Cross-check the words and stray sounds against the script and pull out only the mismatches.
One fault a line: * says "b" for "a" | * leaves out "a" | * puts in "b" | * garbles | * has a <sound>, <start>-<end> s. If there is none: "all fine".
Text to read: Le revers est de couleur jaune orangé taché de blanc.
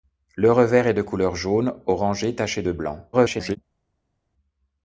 * garbles